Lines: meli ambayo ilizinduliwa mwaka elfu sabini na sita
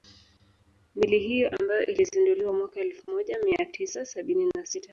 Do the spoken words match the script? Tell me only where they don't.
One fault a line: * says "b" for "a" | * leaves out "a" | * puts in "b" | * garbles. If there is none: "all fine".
* puts in "hiyo"
* puts in "moja mia tisa"